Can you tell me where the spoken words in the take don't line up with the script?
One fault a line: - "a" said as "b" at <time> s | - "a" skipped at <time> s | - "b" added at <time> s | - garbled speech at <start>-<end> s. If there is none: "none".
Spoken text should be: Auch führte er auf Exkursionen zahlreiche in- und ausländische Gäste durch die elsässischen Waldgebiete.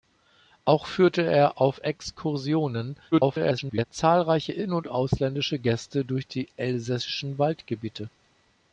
- garbled speech at 3.1-3.8 s